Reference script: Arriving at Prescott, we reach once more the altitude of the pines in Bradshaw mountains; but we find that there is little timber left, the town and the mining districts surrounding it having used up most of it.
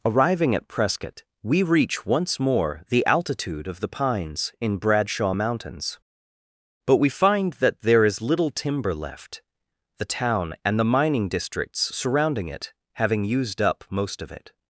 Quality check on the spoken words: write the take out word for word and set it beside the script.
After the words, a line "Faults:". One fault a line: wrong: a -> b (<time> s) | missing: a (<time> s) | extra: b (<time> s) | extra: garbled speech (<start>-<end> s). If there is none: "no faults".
Arriving at Prescott, we reach once more the altitude of the pines in Bradshaw mountains; but we find that there is little timber left, the town and the mining districts surrounding it having used up most of it.
Faults:
no faults